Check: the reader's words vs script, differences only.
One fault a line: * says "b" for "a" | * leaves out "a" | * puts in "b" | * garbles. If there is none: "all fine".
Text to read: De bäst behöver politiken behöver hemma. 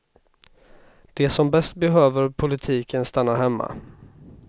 * puts in "som"
* says "stannar" for "behöver"